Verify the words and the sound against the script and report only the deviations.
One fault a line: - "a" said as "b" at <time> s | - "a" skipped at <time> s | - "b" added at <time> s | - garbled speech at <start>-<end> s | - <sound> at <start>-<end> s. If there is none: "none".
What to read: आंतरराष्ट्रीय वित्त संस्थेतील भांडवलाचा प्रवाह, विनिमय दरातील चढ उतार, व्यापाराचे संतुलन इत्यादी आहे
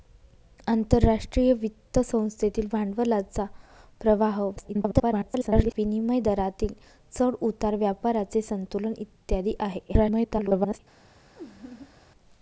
- garbled speech at 4.6-5.7 s
- garbled speech at 9.9-10.8 s
- laugh at 11.4-11.9 s